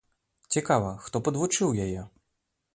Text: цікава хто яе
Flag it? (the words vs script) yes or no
yes